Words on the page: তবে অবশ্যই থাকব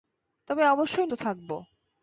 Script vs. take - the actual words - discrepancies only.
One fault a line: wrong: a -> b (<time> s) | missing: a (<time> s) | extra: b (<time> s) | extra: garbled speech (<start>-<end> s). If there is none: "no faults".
no faults